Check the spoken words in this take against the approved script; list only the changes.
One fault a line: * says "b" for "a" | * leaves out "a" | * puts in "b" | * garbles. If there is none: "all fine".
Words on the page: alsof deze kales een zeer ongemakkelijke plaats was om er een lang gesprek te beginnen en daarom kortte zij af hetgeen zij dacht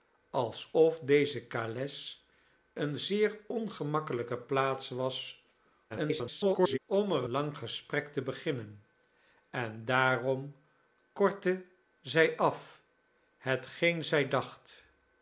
* garbles
* leaves out "een"